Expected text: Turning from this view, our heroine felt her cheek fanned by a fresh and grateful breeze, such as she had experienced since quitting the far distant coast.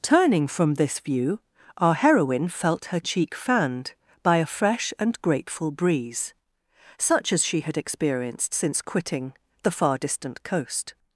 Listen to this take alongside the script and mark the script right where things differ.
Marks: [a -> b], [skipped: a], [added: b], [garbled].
Turning from this view, our heroine felt her cheek fanned by a fresh and grateful breeze, such as she had experienced since quitting the far distant coast.